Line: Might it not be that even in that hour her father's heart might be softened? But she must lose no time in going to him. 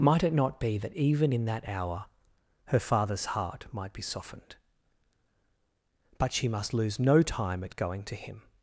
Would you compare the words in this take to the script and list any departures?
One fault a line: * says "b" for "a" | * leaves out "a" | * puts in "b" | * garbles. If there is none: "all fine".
* says "at" for "in"